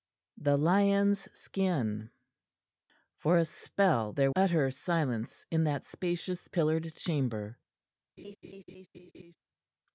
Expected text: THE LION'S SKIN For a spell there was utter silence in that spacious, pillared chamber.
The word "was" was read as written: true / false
false